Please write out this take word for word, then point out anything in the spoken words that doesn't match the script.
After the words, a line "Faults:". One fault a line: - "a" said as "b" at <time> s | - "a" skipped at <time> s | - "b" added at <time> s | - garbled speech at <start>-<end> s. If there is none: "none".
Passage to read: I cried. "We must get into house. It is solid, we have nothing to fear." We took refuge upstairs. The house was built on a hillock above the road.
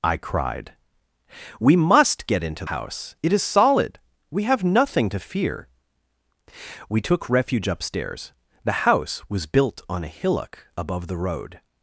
I cried. "We must get into house. It is solid, we have nothing to fear." We took refuge upstairs. The house was built on a hillock above the road.
Faults:
none